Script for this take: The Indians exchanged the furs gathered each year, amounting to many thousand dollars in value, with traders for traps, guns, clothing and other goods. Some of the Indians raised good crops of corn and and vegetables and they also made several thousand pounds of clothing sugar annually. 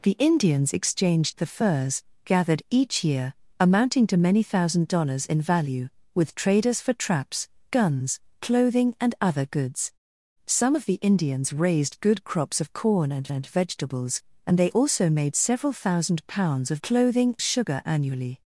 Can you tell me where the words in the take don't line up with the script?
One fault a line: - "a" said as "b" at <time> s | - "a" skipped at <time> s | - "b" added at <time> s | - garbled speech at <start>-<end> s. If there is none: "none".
none